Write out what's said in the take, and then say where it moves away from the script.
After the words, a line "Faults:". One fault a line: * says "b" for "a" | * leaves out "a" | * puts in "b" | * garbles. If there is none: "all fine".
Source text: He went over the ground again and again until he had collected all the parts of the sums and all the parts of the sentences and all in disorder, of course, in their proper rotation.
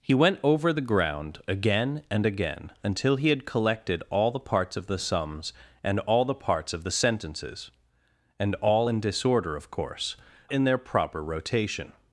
He went over the ground again and again until he had collected all the parts of the sums and all the parts of the sentences and all in disorder, of course, in their proper rotation.
Faults:
all fine